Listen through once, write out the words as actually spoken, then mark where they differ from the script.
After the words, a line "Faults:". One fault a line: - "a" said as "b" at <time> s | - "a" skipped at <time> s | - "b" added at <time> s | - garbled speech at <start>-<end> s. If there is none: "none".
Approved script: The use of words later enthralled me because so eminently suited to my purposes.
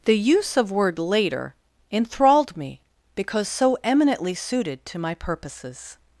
The use of word later enthralled me because so eminently suited to my purposes.
Faults:
- "words" said as "word" at 0.7 s